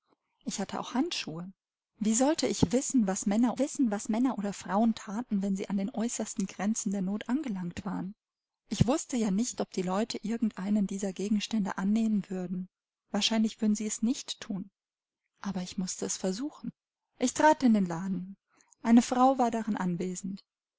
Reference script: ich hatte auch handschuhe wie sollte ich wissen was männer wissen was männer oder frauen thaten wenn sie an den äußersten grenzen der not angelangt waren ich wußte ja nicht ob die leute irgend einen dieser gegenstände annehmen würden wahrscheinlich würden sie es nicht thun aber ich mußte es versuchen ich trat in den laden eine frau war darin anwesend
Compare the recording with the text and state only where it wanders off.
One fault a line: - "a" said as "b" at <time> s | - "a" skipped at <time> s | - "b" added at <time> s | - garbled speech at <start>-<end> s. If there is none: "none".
none